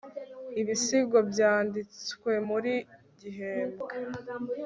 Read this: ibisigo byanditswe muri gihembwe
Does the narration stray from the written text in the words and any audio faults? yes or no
no